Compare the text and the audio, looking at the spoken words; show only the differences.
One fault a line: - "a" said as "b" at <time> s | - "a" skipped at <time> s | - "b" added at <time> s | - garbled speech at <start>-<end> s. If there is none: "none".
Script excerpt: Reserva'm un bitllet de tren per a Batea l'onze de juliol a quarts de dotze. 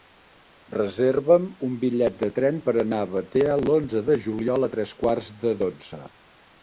- "anar" added at 2.9 s
- "tres" added at 4.8 s